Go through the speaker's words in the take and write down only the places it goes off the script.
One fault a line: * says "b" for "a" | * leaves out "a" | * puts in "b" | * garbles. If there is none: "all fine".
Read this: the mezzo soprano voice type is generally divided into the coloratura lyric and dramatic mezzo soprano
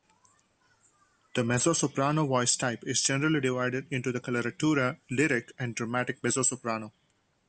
all fine